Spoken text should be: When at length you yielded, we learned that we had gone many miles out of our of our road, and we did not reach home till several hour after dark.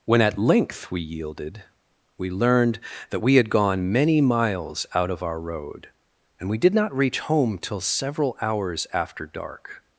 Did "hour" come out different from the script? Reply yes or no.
yes